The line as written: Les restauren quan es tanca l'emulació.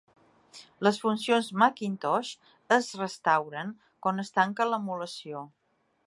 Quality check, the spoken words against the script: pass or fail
fail